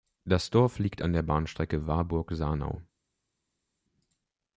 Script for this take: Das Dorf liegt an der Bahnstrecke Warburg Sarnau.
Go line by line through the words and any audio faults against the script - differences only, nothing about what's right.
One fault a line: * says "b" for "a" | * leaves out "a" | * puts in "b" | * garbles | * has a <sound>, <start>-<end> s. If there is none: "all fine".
all fine